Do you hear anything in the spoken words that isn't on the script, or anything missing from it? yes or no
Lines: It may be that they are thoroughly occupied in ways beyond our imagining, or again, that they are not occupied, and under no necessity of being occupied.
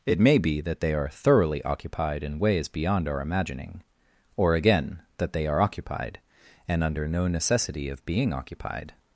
yes